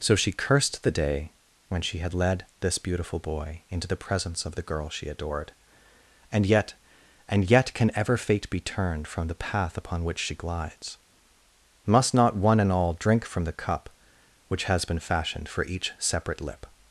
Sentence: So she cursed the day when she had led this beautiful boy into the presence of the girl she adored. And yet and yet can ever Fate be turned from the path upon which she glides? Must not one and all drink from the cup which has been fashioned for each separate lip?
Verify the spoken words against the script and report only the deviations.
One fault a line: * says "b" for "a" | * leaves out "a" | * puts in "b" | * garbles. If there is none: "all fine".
all fine